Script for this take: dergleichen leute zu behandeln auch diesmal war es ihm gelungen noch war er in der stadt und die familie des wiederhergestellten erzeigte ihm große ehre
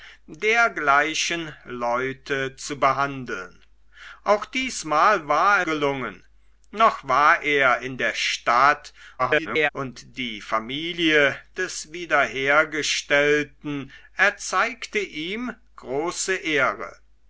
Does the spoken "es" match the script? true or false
false